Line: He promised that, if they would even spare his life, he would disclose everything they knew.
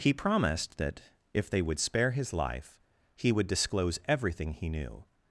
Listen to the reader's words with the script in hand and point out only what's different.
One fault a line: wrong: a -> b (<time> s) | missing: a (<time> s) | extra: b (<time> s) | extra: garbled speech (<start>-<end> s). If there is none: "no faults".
missing: even (1.8 s)
wrong: they -> he (4.5 s)